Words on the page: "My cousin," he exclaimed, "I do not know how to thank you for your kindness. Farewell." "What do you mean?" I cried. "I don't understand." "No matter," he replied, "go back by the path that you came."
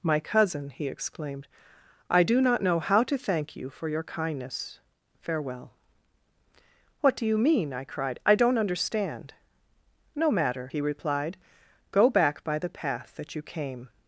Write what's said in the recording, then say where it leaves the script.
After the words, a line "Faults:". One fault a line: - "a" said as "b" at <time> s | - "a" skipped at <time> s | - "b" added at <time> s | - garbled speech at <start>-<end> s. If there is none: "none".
"My cousin," he exclaimed, "I do not know how to thank you for your kindness. Farewell." "What do you mean?" I cried. "I don't understand." "No matter," he replied, "go back by the path that you came."
Faults:
none